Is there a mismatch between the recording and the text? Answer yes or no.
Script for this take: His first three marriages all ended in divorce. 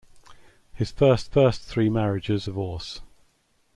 yes